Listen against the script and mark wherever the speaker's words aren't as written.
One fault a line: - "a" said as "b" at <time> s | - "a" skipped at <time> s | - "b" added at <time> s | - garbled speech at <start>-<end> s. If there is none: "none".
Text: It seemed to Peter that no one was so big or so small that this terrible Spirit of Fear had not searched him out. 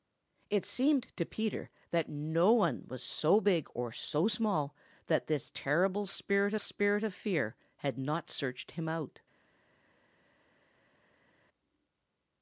- "Spirit" added at 6.6 s